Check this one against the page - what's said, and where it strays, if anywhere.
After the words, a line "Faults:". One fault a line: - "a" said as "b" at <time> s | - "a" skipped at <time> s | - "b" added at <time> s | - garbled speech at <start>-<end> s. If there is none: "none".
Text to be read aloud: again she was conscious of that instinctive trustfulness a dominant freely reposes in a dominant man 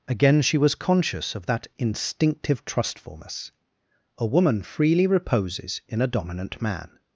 again she was conscious of that instinctive trustfulness a woman freely reposes in a dominant man
Faults:
- "dominant" said as "woman" at 4.2 s